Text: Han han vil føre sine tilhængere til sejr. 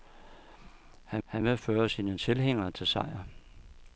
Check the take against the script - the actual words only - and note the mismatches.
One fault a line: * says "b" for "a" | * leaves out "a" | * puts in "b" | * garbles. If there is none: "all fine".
all fine